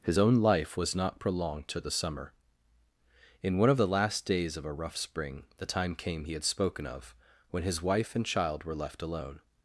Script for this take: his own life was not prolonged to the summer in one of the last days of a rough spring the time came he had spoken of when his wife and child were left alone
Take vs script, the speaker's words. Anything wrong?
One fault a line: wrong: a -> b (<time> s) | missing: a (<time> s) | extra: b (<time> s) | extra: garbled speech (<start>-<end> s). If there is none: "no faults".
no faults